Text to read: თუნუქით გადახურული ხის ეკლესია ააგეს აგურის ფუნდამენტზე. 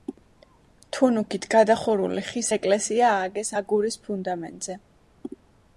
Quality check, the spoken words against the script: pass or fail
pass